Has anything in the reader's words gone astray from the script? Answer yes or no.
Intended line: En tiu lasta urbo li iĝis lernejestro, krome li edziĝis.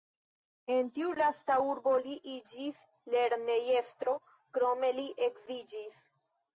no